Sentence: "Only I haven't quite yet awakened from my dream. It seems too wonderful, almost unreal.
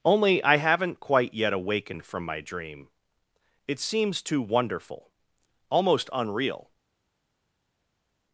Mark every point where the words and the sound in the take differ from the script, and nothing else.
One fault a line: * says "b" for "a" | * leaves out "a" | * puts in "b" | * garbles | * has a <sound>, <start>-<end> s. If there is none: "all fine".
all fine